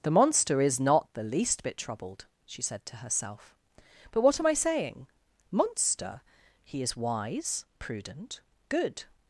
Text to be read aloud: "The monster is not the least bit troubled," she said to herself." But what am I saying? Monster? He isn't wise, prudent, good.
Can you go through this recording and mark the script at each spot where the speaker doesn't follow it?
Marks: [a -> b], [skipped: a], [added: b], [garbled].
"The monster is not the least bit troubled," she said to herself." But what am I saying? Monster? He [isn't -> is] wise, prudent, good.